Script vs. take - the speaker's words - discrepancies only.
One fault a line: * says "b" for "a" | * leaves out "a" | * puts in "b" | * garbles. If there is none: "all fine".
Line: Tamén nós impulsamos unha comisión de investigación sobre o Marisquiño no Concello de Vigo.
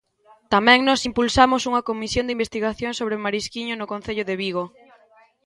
all fine